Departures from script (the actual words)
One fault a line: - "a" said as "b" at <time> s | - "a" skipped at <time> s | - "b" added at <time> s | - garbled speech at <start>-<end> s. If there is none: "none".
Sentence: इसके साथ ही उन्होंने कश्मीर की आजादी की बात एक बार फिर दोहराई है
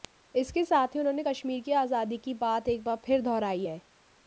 none